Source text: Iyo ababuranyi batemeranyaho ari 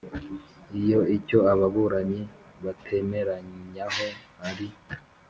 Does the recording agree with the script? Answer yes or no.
no